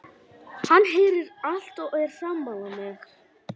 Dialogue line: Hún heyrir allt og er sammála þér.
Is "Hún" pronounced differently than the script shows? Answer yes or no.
yes